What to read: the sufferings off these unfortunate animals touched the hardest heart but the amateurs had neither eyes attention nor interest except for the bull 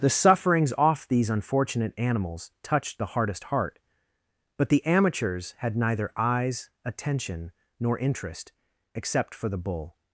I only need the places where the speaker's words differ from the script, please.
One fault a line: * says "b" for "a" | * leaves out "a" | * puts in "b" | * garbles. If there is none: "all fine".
all fine